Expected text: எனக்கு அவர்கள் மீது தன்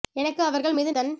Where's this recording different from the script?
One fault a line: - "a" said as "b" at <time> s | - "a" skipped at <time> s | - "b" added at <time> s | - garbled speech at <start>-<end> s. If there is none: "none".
none